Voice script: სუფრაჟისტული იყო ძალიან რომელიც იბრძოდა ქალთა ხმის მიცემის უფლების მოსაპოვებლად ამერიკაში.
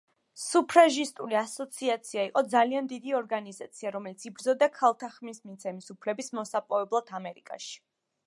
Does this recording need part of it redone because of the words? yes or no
yes